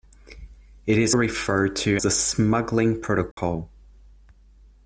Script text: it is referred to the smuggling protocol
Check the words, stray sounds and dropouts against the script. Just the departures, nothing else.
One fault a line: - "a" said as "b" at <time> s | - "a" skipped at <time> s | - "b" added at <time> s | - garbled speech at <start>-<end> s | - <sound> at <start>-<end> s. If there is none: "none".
- dropout at 3.3-3.4 s